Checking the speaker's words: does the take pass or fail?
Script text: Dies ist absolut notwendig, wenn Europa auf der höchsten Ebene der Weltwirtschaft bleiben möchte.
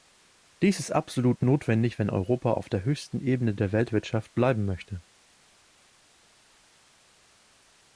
pass